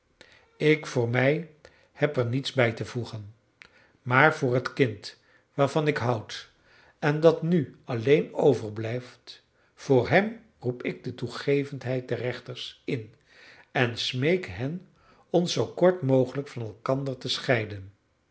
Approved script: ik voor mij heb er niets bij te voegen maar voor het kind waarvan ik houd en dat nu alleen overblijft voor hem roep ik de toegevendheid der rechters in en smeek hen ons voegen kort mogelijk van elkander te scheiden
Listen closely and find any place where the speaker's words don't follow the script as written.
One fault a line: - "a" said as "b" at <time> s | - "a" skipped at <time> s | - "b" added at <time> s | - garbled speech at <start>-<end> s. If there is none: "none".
- "voegen" said as "zoo" at 15.5 s